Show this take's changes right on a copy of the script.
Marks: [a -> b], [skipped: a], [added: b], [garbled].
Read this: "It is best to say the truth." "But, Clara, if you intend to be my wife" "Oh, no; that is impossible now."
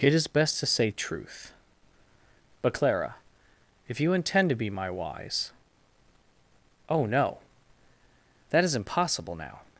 "It is best to say [skipped: the] truth." "But, Clara, if you intend to be my [wife" -> wise] "Oh, no; that is impossible now."